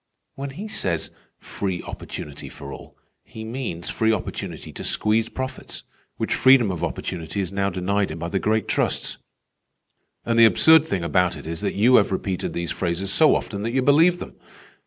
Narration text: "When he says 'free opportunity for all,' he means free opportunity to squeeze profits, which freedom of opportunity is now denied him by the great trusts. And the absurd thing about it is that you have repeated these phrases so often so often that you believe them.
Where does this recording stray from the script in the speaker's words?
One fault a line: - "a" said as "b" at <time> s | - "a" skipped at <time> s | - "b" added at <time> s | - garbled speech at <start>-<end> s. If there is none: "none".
- "so often" skipped at 13.6 s